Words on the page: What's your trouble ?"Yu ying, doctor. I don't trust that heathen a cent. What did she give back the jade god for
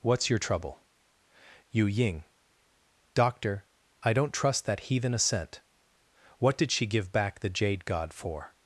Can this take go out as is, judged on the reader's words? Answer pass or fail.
pass